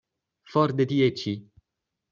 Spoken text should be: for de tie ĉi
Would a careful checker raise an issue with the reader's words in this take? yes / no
no